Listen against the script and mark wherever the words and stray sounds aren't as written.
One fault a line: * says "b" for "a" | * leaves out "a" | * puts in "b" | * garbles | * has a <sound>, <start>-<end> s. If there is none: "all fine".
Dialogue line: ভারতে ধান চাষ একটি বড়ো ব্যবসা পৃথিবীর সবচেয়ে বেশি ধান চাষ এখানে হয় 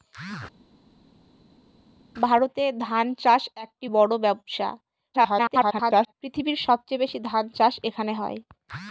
* garbles